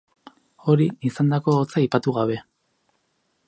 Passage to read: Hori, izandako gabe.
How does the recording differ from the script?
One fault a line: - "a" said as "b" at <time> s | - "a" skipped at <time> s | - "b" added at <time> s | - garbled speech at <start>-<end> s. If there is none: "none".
- "hotza aipatu" added at 1.6 s